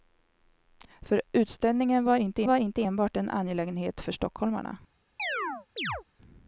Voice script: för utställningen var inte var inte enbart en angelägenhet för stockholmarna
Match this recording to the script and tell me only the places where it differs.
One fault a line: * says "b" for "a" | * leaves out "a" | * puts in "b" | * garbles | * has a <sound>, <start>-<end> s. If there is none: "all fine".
* has a chirp, 5.2-6.0 s